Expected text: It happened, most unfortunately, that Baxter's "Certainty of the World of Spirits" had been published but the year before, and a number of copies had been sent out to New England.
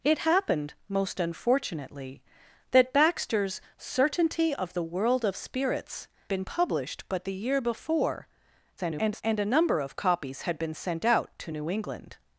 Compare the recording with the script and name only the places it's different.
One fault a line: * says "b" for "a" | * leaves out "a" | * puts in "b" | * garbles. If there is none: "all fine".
* leaves out "had"
* garbles